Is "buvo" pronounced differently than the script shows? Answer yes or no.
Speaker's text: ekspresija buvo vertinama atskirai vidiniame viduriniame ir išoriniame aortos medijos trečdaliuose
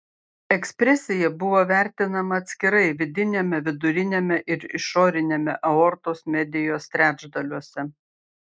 no